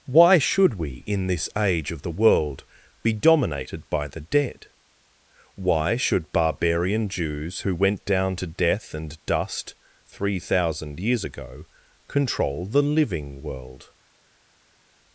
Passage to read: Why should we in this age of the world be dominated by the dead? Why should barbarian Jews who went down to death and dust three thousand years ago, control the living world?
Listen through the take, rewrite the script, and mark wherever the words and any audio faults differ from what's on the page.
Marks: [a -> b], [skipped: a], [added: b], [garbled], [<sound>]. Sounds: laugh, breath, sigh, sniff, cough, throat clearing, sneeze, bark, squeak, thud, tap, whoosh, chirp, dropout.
Why should we in this age of the world be dominated by the dead? Why should barbarian Jews who went down to death and dust three thousand years ago, control the living world?